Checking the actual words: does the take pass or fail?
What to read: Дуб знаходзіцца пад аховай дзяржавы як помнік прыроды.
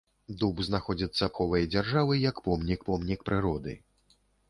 fail